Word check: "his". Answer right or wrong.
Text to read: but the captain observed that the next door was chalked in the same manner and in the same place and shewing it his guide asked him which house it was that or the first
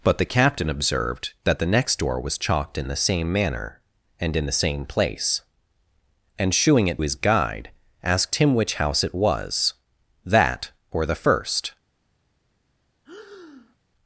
right